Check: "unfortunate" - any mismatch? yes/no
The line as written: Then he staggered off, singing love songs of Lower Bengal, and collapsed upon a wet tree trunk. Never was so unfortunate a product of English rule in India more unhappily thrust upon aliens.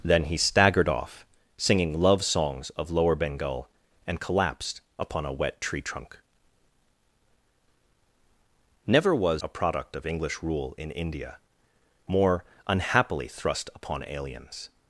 yes